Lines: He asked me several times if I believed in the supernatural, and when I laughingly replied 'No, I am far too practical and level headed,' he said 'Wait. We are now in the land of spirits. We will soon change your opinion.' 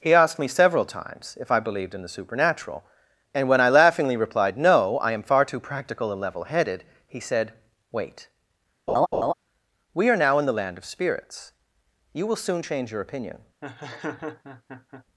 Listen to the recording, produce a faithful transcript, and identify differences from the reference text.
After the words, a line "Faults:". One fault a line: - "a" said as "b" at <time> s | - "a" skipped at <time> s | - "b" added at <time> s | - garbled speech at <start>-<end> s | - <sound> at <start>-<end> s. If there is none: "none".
He asked me several times if I believed in the supernatural, and when I laughingly replied 'No, I am far too practical and level headed,' he said 'Wait. We are now in the land of spirits. You will soon change your opinion.'
Faults:
- laugh at 8.9-9.3 s
- "We" said as "You" at 12.1 s
- laugh at 13.6-15.1 s